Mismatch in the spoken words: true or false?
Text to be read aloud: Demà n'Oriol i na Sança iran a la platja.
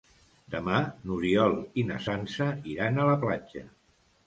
false